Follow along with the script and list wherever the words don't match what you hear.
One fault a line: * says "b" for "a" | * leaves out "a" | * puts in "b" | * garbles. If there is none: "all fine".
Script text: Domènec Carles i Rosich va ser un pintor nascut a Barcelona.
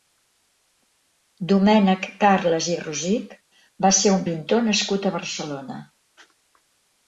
all fine